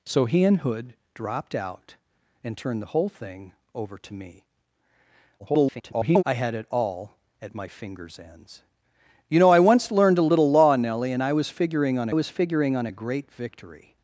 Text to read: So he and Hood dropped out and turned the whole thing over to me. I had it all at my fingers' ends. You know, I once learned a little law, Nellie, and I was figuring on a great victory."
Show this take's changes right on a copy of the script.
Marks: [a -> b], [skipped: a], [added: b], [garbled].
So he and Hood dropped out and turned the whole thing over to me. [garbled] I had it all at my fingers' ends. You know, I once learned a little law, Nellie, and I was figuring on [added: was figuring on] a great victory."